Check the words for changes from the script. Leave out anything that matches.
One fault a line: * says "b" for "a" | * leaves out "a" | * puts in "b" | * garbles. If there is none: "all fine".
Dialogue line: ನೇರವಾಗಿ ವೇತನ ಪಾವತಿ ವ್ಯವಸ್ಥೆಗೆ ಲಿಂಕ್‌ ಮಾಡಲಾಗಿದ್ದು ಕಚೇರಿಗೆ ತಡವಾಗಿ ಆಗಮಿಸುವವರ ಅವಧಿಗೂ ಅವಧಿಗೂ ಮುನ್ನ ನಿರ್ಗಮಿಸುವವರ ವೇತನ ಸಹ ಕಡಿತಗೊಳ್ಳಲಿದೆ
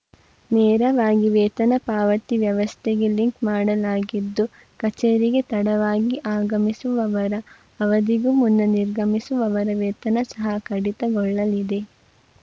* leaves out "ಅವಧಿಗೂ"